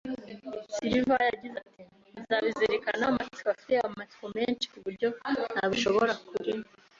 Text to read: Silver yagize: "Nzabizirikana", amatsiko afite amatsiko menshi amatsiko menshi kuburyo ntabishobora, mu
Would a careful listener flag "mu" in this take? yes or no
yes